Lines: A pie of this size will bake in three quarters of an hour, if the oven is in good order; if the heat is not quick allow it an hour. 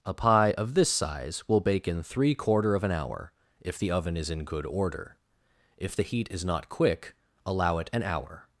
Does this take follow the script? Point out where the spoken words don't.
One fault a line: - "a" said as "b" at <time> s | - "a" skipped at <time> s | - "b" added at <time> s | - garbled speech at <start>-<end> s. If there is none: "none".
- "quarters" said as "quarter" at 2.3 s